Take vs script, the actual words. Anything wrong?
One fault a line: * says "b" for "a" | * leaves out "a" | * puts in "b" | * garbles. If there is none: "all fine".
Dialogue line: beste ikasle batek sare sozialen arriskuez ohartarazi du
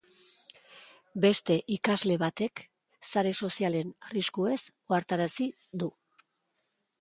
all fine